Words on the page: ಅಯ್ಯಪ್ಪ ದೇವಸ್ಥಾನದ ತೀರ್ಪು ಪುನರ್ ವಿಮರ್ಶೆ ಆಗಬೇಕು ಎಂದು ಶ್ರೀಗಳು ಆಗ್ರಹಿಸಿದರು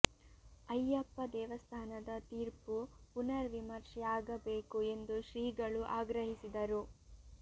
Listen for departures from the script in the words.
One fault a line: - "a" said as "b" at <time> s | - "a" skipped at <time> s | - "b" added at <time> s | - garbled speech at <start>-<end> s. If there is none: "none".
none